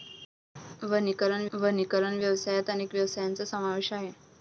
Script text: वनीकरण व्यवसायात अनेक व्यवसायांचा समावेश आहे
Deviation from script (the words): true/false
true